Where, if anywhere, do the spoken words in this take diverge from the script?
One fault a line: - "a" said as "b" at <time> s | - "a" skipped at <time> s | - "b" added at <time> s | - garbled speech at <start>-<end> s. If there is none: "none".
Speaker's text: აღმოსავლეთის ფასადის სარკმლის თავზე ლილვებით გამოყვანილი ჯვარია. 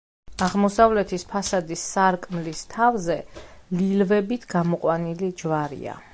none